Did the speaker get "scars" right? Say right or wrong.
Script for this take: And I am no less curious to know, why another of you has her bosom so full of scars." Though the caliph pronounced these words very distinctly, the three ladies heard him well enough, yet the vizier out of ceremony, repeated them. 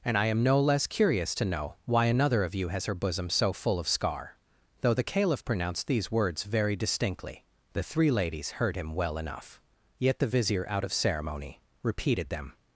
wrong